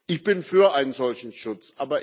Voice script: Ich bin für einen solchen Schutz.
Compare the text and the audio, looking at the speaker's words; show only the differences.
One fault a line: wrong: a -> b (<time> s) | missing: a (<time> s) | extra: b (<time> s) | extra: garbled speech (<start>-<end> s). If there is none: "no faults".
no faults